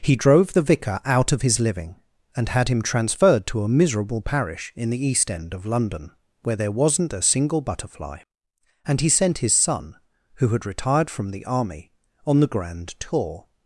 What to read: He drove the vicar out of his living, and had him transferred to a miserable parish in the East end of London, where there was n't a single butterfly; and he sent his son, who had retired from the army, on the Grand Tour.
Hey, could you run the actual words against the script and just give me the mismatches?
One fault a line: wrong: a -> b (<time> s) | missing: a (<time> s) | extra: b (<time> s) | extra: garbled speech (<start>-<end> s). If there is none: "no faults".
no faults